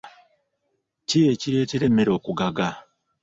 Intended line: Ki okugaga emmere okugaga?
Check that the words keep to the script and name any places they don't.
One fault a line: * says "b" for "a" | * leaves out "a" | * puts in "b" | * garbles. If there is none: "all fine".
* says "ekireetera" for "okugaga"